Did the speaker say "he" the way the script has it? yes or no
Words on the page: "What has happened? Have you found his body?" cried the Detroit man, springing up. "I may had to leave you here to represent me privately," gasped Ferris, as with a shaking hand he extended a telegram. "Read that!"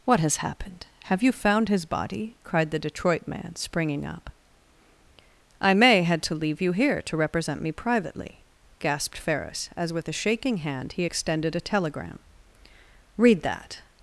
yes